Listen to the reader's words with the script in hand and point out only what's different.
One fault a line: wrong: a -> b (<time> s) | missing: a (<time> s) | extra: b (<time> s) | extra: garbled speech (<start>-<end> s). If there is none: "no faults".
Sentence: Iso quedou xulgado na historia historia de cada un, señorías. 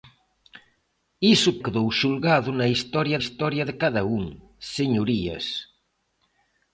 no faults